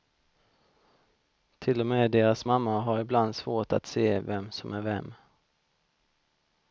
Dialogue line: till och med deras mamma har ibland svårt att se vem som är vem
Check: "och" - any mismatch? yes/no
no